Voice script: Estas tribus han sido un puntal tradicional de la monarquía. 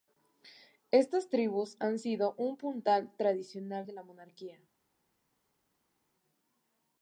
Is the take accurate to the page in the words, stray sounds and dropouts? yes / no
yes